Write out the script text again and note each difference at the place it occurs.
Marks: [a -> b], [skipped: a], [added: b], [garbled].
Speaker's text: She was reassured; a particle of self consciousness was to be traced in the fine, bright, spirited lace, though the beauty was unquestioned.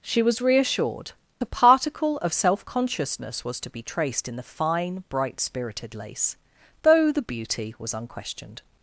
She was reassured; a particle of self consciousness was to be traced in the fine, bright, spirited lace, though the beauty was unquestioned.